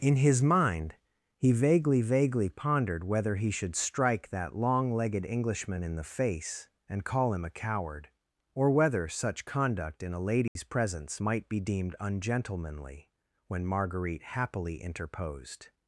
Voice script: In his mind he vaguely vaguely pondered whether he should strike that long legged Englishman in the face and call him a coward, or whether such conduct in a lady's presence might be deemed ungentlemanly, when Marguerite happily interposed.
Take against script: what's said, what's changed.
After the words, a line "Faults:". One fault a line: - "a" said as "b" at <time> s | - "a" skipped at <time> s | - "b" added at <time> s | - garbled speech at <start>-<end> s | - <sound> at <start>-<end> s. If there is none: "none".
In his mind he vaguely vaguely pondered whether he should strike that long legged Englishman in the face and call him a coward, or whether such conduct in a lady's presence might be deemed ungentlemanly, when Marguerite happily interposed.
Faults:
- dropout at 10.5-10.6 s